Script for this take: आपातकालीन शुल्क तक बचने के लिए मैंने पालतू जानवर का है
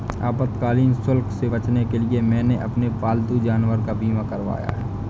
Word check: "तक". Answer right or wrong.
wrong